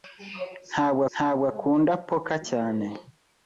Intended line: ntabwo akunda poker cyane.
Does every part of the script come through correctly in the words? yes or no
no